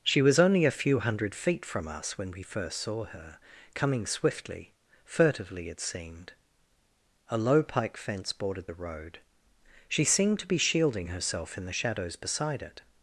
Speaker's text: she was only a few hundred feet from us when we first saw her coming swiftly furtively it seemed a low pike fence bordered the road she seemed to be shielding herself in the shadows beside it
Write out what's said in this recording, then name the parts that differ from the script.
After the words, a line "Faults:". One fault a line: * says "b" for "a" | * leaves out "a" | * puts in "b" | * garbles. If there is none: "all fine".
she was only a few hundred feet from us when we first saw her coming swiftly furtively it seemed a low pike fence bordered the road she seemed to be shielding herself in the shadows beside it
Faults:
all fine